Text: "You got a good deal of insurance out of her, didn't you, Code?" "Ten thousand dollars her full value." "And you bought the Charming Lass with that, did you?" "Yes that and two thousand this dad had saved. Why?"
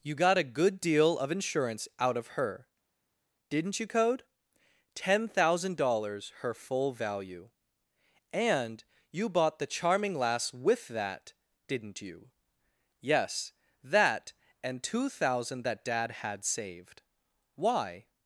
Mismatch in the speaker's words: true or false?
true